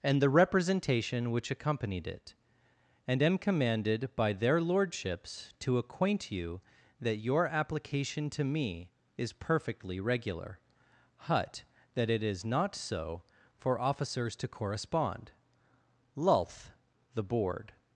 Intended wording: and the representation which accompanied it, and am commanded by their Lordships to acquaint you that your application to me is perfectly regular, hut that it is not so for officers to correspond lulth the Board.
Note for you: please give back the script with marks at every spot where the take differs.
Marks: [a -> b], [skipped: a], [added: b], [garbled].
and the representation which accompanied it, and am commanded by their Lordships to acquaint you that your application to me is perfectly regular, hut that it is not so for officers to correspond lulth the Board.